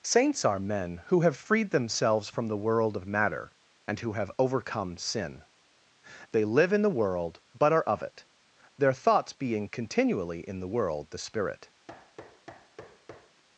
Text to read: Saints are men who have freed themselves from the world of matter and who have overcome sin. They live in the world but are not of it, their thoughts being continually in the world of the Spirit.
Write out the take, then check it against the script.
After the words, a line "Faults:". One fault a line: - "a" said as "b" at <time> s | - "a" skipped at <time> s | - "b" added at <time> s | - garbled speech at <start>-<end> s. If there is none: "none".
Saints are men who have freed themselves from the world of matter and who have overcome sin. They live in the world but are of it, their thoughts being continually in the world the Spirit.
Faults:
- "not" skipped at 7.8 s
- "of" skipped at 11.1 s